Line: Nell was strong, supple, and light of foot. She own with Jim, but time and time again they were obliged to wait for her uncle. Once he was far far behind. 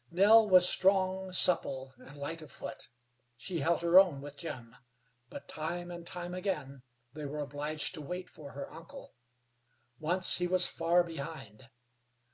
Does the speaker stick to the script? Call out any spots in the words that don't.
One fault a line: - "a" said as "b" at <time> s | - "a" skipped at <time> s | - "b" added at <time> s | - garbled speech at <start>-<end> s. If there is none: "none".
- "held her" added at 3.6 s
- "far" skipped at 11.0 s